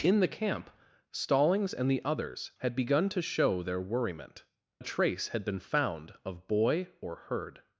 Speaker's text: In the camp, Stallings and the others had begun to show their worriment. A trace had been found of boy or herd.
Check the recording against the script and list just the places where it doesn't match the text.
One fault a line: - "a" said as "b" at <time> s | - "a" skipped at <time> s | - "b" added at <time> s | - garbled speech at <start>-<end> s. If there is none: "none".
none